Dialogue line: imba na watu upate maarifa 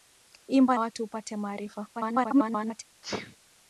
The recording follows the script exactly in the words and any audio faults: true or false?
false